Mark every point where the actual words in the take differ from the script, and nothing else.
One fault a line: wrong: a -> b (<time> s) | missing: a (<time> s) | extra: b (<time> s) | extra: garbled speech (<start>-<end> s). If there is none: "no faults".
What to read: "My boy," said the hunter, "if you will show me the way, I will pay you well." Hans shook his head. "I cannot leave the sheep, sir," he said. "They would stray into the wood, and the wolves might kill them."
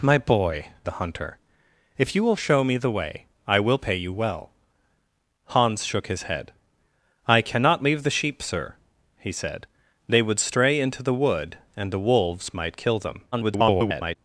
missing: said (0.7 s)
extra: garbled speech (13.3-14.2 s)